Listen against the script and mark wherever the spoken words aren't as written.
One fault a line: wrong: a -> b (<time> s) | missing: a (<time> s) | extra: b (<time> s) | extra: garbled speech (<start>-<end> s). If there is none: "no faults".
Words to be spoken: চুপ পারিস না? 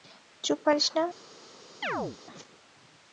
no faults